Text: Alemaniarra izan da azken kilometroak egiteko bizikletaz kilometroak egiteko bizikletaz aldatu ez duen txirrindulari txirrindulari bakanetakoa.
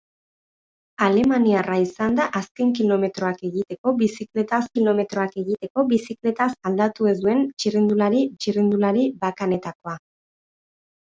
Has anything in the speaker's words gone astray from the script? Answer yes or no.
no